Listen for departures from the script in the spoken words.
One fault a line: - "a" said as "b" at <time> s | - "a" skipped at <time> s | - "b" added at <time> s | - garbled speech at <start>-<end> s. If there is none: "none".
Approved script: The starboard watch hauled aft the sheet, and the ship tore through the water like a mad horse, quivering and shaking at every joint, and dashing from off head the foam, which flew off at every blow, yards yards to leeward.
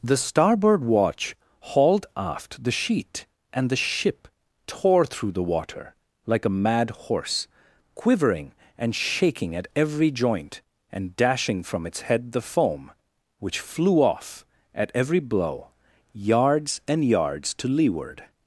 - "off" said as "its" at 11.9 s
- "and" added at 16.9 s